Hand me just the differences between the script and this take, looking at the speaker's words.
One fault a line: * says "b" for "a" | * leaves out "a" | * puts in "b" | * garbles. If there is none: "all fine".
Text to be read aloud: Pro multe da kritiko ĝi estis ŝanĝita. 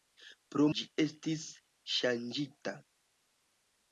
* leaves out "multe da kritiko"